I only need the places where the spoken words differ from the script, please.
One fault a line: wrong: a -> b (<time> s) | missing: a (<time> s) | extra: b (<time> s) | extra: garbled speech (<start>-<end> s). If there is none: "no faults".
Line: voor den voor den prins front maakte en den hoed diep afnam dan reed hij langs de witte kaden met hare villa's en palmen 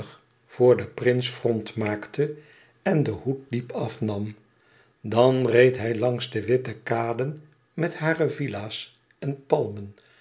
missing: voor den (0.9 s)